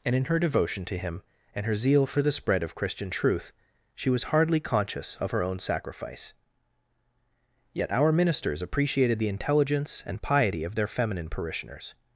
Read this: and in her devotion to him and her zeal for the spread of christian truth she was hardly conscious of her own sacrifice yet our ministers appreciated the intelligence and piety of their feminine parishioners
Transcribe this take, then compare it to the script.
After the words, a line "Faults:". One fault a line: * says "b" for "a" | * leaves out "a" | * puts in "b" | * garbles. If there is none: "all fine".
and in her devotion to him and her zeal for the spread of christian truth she was hardly conscious of her own sacrifice yet our ministers appreciated the intelligence and piety of their feminine parishioners
Faults:
all fine